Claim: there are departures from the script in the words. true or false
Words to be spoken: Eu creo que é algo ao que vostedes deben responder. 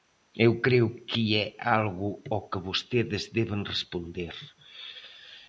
false